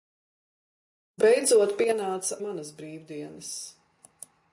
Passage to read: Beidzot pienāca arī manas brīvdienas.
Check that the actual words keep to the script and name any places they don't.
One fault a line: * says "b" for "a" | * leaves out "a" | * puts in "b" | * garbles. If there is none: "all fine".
* leaves out "arī"